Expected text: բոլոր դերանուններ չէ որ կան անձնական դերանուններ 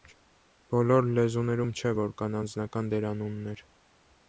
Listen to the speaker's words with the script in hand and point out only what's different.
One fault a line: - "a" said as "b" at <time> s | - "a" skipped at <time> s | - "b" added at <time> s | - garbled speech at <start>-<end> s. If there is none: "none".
- "դերանուններ" said as "լեզուներում" at 1.2 s